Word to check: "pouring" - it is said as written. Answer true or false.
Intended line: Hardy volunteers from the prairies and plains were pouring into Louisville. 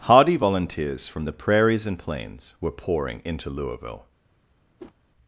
true